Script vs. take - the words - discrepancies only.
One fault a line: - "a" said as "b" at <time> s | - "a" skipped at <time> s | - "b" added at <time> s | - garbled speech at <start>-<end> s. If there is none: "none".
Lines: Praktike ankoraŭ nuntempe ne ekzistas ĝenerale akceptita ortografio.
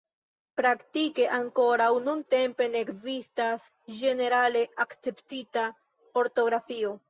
none